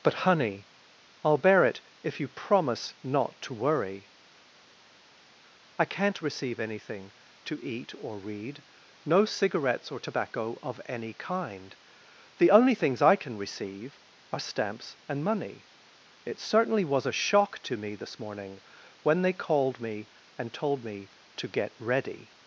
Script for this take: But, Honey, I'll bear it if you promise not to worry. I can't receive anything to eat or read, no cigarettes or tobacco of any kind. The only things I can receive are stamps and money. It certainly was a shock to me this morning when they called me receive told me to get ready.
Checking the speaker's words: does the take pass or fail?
fail